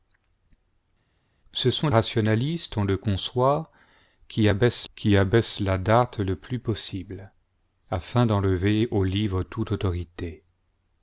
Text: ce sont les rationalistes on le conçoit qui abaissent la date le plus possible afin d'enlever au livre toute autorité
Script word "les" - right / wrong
wrong